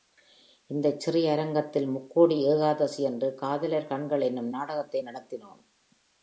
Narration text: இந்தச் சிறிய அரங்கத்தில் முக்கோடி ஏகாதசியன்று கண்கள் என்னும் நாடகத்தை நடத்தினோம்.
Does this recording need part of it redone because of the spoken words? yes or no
yes